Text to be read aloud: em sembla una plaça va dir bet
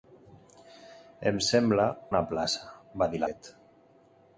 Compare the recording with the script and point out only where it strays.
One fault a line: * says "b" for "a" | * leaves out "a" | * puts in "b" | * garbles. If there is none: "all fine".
all fine